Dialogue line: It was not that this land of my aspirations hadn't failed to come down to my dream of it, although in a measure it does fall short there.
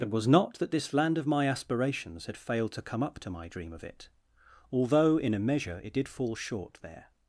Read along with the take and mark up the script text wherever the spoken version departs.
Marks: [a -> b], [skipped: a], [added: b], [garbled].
It was not that this land of my aspirations [hadn't -> had] failed to come [down -> up] to my dream of it, although in a measure it [does -> did] fall short there.